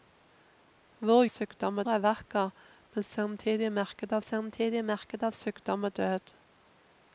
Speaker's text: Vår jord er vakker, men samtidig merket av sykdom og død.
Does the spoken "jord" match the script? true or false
false